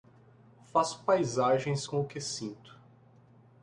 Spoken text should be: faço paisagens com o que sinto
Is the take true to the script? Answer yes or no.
yes